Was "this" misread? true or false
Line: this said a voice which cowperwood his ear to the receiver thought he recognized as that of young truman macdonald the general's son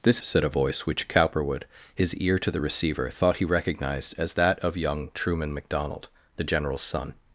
false